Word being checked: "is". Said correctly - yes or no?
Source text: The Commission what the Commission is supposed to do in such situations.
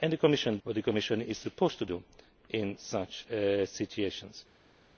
yes